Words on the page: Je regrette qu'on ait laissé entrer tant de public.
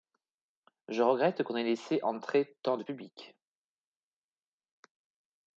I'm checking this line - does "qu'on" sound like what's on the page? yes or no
yes